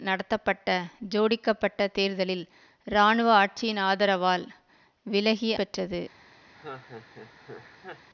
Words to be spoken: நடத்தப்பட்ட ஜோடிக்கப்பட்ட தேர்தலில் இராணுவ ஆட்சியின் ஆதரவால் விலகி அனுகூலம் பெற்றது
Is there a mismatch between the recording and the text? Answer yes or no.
yes